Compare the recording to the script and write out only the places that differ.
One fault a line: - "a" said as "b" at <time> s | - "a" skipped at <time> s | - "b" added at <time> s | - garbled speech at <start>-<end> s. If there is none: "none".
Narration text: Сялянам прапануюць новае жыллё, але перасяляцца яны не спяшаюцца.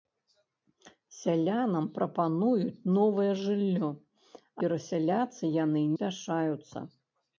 - "але" skipped at 3.9 s
- "не" skipped at 5.8 s